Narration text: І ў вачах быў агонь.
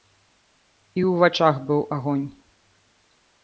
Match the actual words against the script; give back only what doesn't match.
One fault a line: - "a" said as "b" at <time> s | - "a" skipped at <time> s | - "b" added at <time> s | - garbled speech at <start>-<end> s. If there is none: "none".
none